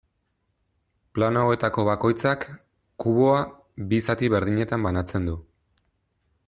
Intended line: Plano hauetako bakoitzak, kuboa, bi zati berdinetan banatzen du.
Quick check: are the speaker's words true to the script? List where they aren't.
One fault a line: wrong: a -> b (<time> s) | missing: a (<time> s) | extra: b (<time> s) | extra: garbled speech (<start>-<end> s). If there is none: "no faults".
no faults